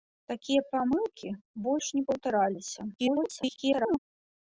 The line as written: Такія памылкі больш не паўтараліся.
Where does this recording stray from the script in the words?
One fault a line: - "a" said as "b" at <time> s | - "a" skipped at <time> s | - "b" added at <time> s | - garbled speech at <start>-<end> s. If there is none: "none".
- garbled speech at 3.0-4.0 s